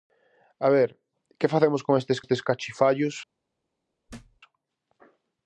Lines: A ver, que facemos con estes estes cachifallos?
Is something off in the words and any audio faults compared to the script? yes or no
yes